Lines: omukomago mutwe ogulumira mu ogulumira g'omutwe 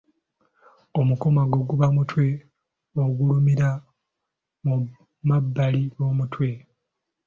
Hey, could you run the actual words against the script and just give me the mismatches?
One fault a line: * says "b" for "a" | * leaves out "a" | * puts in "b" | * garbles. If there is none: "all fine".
* puts in "guba"
* says "mabbali" for "ogulumira"